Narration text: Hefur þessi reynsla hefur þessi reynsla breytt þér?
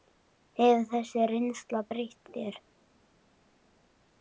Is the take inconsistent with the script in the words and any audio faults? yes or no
yes